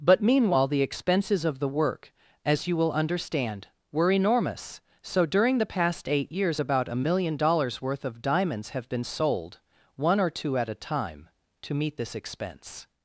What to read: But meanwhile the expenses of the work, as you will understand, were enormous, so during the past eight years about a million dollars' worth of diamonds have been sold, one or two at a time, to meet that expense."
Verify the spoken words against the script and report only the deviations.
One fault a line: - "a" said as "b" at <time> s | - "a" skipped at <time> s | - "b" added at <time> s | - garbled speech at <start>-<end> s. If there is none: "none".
- "that" said as "this" at 12.0 s